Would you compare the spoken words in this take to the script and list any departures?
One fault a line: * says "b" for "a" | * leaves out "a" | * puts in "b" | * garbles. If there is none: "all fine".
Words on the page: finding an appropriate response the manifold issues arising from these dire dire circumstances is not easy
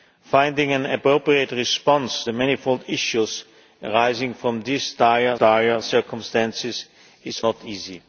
all fine